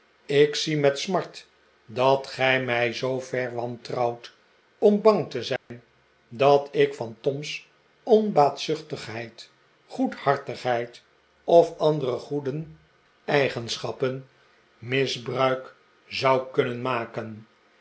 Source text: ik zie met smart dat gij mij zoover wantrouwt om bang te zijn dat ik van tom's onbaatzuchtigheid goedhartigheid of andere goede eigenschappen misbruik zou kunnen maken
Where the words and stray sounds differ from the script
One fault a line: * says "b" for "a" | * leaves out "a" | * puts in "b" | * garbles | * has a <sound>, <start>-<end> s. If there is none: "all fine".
* has a dropout, 5.6-5.7 s